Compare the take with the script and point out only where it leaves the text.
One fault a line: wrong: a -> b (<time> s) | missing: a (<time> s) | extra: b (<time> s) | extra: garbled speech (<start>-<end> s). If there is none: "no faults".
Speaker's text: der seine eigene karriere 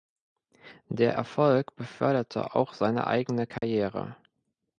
extra: erfolg beförderte auch (1.1 s)